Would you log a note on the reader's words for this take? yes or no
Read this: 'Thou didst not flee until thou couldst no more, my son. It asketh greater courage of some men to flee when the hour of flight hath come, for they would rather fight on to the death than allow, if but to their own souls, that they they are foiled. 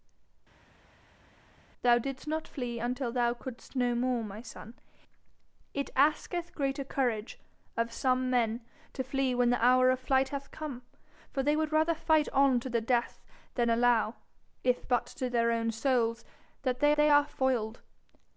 no